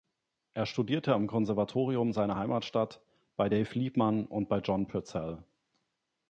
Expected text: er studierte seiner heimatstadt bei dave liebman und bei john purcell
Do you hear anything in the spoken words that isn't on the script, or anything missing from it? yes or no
yes